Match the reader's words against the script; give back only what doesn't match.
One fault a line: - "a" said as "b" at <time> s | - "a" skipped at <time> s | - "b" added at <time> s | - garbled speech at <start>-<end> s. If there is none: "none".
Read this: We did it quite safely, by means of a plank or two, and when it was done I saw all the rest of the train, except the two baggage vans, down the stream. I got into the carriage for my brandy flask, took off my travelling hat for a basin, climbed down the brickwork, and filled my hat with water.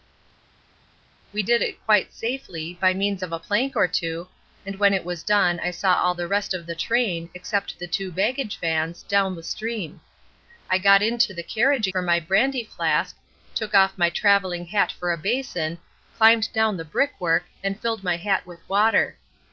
none